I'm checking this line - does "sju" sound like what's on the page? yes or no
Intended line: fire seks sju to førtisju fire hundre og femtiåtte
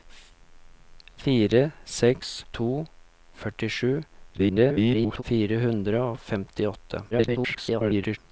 no